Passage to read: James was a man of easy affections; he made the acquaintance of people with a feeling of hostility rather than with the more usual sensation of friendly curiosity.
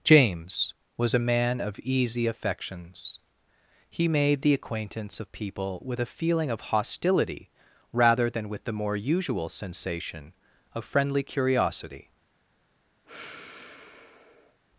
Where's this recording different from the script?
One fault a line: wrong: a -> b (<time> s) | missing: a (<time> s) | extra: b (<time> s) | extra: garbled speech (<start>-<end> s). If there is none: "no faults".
no faults